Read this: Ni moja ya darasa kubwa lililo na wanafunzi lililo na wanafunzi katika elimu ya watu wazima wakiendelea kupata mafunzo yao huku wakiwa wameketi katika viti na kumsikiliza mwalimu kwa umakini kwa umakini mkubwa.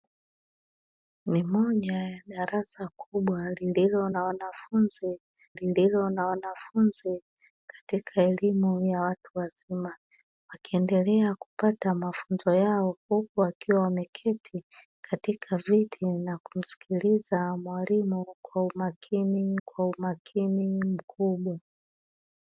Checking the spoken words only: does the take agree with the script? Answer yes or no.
yes